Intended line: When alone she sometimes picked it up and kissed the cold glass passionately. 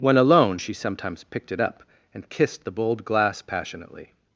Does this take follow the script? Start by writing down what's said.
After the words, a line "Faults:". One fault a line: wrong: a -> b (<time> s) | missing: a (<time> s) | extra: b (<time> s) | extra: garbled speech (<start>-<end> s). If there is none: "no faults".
When alone she sometimes picked it up and kissed the bold glass passionately.
Faults:
wrong: cold -> bold (2.7 s)